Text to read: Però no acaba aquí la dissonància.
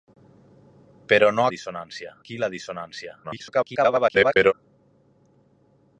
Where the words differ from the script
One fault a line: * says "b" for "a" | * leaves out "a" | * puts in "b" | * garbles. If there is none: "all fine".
* says "dissonància" for "acaba"
* garbles